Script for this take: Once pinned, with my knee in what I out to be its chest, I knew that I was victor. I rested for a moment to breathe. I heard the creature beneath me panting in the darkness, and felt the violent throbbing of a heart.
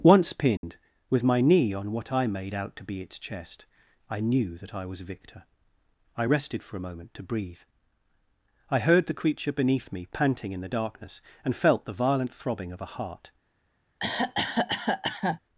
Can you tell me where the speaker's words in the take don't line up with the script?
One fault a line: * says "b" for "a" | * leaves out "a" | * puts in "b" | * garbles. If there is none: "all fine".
* says "on" for "in"
* puts in "made"